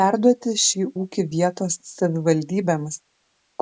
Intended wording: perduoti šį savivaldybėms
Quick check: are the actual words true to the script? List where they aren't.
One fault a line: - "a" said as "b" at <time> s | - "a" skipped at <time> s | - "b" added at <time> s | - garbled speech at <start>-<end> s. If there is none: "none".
- "ūkį vietos" added at 1.0 s